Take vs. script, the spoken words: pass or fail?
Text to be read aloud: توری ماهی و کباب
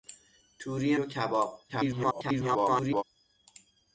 fail